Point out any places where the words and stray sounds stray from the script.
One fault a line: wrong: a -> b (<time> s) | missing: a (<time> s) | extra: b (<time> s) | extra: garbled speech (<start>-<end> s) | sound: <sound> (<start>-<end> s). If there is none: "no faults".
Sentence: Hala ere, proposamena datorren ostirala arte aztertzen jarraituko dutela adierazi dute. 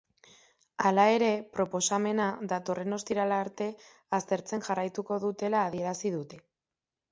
no faults